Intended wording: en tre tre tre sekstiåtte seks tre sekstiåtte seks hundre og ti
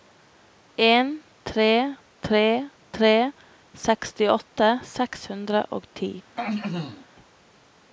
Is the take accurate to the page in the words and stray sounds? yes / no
no